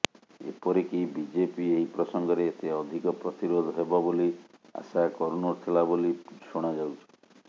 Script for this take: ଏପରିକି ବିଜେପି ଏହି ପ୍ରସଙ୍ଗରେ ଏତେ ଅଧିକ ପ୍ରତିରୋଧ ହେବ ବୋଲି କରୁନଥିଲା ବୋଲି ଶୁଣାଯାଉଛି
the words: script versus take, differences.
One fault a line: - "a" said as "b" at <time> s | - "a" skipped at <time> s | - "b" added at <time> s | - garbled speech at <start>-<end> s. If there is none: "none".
- "ଆଶା" added at 4.8 s